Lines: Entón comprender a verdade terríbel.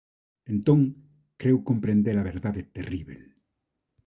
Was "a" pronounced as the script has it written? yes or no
yes